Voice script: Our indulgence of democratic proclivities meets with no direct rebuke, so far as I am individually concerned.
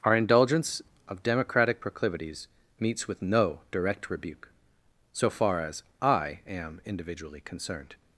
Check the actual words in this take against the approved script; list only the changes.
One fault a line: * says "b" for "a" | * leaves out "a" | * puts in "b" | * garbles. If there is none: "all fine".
all fine